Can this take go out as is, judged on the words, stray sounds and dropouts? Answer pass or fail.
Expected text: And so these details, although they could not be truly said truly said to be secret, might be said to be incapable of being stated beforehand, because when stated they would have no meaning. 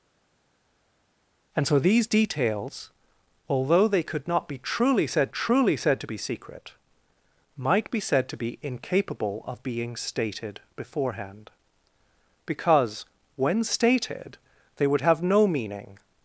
pass